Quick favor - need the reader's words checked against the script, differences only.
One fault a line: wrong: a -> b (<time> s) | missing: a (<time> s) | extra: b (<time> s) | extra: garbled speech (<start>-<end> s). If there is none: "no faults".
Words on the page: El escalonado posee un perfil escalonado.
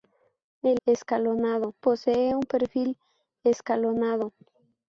no faults